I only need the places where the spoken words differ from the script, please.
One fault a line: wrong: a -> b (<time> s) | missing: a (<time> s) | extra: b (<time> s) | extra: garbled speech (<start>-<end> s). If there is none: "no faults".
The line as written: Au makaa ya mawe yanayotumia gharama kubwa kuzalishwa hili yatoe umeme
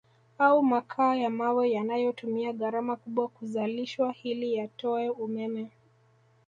no faults